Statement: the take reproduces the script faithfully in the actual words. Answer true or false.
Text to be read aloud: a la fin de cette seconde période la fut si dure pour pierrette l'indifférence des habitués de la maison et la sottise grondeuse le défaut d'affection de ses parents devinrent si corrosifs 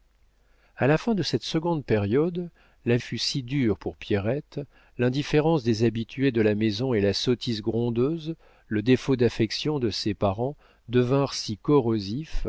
true